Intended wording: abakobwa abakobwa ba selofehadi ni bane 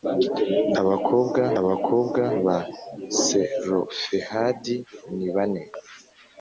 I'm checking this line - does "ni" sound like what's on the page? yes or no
yes